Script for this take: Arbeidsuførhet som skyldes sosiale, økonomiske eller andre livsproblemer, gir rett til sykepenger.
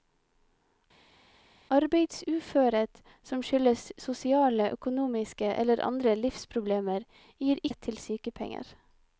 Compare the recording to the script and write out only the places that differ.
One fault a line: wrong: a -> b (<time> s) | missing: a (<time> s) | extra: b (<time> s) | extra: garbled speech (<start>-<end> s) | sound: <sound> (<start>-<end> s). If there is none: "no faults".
no faults